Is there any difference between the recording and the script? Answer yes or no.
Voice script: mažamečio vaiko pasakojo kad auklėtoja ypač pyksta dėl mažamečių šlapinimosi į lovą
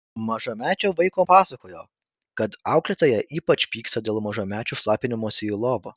no